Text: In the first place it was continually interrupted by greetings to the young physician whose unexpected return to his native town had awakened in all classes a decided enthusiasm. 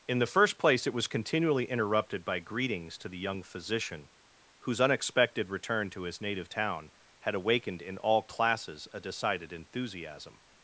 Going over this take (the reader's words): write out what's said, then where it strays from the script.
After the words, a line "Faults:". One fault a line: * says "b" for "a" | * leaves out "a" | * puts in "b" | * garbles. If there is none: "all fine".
In the first place it was continually interrupted by greetings to the young physician whose unexpected return to his native town had awakened in all classes a decided enthusiasm.
Faults:
all fine